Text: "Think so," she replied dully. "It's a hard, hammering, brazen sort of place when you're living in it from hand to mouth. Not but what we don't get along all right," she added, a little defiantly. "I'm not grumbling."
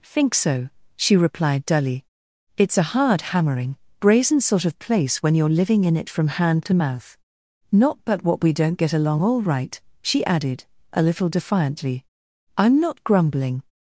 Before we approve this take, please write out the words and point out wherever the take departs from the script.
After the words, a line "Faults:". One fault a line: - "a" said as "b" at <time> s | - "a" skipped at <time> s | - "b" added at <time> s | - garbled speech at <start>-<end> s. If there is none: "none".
"Think so," she replied dully. "It's a hard, hammering, brazen sort of place when you're living in it from hand to mouth. Not but what we don't get along all right," she added, a little defiantly. "I'm not grumbling."
Faults:
none